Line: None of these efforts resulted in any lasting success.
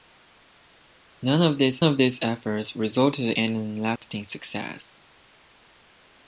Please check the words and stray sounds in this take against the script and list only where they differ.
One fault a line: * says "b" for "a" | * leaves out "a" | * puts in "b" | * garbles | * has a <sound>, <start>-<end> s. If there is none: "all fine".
* puts in "of these"
* leaves out "in"
* has a dropout, 4.0-4.0 s